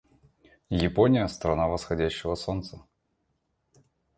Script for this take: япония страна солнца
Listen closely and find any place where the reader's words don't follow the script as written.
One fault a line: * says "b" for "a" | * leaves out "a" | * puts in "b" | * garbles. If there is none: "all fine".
* puts in "восходящего"